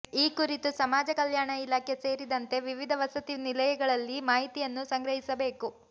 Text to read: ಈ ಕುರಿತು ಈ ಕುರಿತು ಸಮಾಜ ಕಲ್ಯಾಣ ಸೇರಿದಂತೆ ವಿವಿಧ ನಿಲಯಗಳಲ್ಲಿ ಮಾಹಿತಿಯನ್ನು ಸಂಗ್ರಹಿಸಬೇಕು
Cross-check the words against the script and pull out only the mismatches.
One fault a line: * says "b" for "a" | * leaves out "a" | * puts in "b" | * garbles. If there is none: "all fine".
* leaves out "ಈ ಕುರಿತು"
* puts in "ಇಲಾಖೆ"
* puts in "ವಸತಿ"